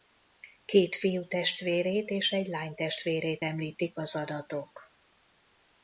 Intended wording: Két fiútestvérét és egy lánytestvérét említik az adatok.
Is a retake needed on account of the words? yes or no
no